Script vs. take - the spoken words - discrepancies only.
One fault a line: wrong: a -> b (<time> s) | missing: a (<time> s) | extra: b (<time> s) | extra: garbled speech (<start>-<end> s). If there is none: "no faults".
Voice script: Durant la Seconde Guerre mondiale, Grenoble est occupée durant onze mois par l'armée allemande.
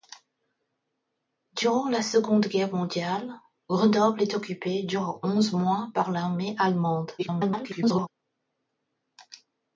extra: garbled speech (7.2-8.1 s)